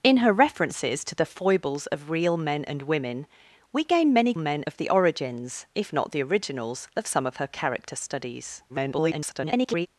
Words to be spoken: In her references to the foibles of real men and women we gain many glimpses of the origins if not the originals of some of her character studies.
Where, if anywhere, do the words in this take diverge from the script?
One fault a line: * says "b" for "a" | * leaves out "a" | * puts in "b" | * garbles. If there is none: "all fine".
* says "men" for "glimpses"
* garbles